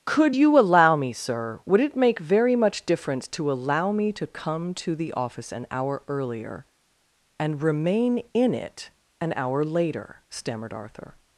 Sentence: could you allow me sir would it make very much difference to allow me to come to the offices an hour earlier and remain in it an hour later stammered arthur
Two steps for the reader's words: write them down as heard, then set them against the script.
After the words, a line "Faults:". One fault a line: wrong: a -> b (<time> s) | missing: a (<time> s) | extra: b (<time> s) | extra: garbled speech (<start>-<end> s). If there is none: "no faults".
could you allow me sir would it make very much difference to allow me to come to the office an hour earlier and remain in it an hour later stammered arthur
Faults:
wrong: offices -> office (5.1 s)